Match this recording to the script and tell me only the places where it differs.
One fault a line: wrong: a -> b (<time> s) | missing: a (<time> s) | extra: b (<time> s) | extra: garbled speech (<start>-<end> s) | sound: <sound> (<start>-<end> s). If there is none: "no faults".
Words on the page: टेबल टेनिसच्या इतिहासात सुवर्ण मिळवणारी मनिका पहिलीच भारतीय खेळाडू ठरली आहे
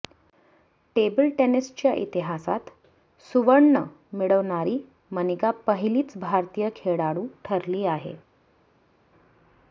no faults